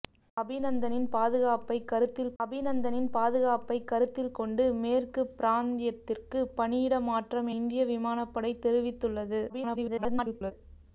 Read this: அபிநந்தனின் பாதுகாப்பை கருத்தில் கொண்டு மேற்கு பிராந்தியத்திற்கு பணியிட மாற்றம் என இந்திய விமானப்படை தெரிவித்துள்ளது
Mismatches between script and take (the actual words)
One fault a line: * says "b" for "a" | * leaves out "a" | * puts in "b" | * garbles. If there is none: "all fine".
* puts in "அபிநந்தனின் பாதுகாப்பை கருத்தில்"
* leaves out "என"
* garbles